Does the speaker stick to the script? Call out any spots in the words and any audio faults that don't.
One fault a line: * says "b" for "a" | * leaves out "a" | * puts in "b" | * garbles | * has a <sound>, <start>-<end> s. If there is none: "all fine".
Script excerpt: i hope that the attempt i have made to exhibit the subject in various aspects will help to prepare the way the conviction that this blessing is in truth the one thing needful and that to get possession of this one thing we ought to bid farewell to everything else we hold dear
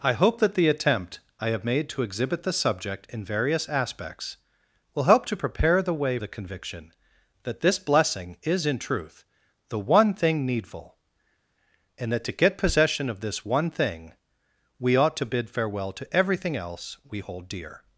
all fine